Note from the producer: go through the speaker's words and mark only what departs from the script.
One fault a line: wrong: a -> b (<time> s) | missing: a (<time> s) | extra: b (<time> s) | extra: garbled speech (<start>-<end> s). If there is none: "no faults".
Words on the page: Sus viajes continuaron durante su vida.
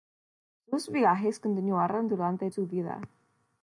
no faults